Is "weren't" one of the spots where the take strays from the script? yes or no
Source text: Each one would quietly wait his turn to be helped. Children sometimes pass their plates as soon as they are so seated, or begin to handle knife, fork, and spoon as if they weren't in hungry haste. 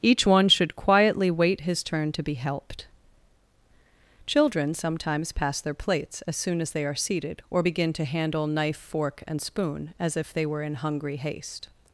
yes